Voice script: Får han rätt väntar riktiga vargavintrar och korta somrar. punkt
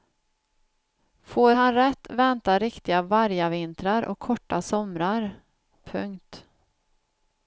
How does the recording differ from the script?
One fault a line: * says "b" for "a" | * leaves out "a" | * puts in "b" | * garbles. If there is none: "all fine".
all fine